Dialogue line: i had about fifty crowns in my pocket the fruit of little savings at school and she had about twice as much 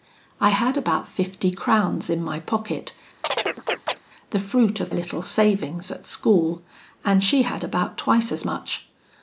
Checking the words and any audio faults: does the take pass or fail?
fail